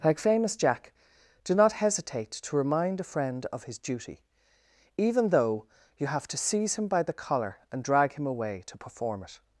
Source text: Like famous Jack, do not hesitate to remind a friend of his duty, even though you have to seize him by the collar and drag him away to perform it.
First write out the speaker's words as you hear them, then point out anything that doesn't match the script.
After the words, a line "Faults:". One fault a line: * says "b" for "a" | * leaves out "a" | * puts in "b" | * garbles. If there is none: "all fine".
Like famous Jack, do not hesitate to remind a friend of his duty, even though you have to seize him by the collar and drag him away to perform it.
Faults:
all fine